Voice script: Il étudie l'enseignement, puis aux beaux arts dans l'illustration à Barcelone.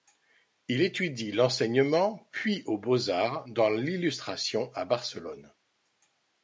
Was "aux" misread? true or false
false